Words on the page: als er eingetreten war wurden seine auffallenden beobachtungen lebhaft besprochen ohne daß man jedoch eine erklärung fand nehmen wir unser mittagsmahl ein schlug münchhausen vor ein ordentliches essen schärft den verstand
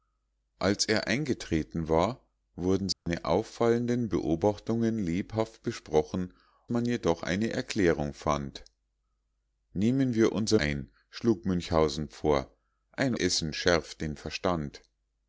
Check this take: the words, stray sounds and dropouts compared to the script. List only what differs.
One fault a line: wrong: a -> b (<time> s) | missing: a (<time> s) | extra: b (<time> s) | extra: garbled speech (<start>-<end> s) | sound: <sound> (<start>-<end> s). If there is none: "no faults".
sound: dropout (2.9-3.1 s)
missing: ohne daß (6.3 s)
missing: mittagsmahl (10.6 s)
missing: ordentliches (13.1 s)